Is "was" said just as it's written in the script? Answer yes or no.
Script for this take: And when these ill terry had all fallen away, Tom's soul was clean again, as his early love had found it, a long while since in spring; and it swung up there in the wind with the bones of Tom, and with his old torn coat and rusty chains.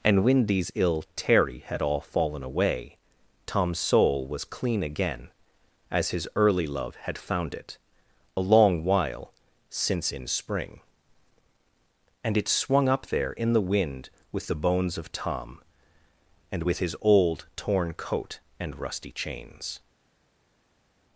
yes